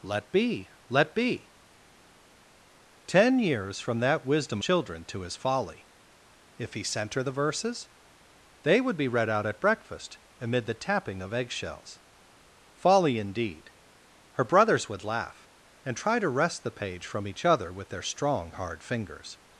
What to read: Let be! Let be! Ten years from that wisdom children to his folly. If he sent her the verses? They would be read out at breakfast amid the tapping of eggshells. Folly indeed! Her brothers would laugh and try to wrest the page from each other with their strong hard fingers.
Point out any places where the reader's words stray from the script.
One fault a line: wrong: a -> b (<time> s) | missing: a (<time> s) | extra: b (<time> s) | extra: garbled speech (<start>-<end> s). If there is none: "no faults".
no faults